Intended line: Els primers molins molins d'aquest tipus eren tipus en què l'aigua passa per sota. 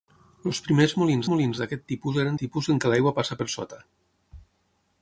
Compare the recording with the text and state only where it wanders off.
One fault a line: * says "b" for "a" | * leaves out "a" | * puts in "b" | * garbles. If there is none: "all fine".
all fine